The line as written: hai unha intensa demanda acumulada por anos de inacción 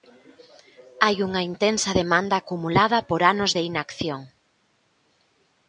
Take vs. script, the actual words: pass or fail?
pass